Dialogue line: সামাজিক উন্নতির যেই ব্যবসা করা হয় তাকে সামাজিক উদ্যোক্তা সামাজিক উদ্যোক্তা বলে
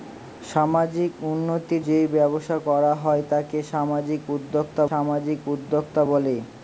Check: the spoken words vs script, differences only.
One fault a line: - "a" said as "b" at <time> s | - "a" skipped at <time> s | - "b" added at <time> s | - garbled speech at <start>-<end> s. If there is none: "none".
none